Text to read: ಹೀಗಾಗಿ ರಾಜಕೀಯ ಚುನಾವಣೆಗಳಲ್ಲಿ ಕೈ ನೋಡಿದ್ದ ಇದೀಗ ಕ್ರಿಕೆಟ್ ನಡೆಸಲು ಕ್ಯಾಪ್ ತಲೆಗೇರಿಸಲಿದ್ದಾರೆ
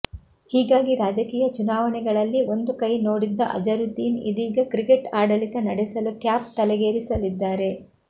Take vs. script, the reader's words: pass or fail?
fail